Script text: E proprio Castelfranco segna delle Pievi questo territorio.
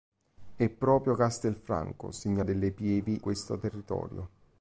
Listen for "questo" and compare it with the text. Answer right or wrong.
right